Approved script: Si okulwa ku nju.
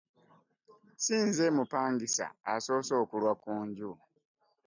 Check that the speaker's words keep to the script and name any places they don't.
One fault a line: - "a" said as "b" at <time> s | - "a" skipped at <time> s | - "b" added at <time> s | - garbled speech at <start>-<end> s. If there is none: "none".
- "nze mupangisa asoose" added at 1.3 s